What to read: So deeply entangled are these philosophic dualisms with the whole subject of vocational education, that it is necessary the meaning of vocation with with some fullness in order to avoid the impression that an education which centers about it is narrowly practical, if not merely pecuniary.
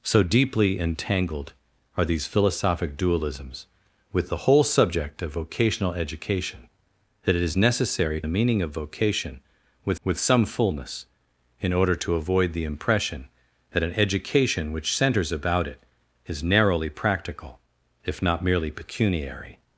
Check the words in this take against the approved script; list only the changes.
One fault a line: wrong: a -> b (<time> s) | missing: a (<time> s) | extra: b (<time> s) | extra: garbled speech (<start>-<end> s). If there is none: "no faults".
no faults